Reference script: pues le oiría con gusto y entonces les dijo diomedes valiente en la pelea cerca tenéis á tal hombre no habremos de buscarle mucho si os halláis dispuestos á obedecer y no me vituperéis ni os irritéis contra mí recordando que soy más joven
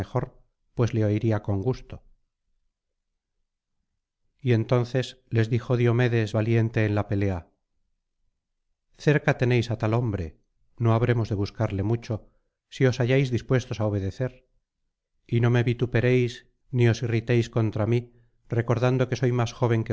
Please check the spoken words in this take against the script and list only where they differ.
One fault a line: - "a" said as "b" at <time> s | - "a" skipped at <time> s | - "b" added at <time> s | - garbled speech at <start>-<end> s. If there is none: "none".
none